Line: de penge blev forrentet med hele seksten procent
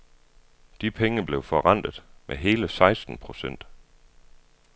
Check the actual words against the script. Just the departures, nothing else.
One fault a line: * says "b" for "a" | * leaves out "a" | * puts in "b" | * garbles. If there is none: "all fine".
all fine